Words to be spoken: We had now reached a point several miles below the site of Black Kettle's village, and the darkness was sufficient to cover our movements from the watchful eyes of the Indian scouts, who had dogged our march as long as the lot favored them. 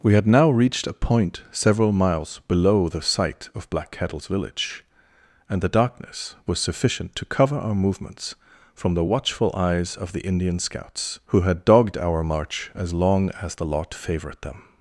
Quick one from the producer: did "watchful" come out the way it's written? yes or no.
yes